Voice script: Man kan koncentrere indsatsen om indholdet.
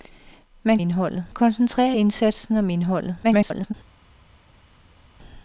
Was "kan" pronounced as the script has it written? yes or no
no